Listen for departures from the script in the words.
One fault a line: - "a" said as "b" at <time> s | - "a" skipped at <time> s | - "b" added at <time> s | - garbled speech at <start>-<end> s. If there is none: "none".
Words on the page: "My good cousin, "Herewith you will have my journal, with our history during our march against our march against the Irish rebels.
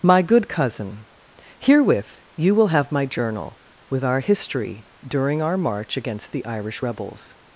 - "our march against" skipped at 6.3 s